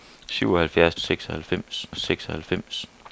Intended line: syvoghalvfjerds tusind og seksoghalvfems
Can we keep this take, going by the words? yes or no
no